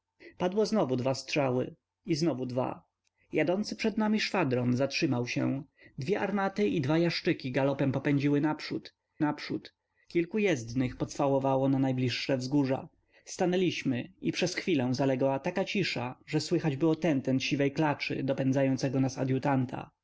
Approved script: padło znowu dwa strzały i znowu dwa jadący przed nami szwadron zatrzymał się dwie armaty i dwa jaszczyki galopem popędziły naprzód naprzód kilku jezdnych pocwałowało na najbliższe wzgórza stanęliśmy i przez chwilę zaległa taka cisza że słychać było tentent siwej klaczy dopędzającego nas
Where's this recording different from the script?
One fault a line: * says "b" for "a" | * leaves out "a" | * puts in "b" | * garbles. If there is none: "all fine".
all fine